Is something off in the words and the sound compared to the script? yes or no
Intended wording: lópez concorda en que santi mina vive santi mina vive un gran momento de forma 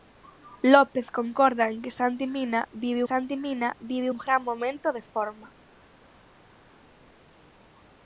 no